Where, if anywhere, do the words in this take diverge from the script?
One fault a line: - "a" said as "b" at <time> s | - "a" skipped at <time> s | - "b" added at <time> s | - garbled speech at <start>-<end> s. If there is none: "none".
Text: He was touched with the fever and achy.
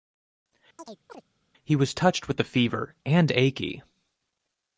none